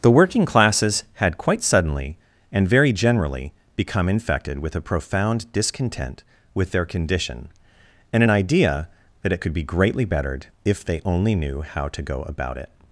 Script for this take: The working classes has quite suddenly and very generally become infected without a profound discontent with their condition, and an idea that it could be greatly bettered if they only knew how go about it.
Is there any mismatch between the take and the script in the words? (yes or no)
yes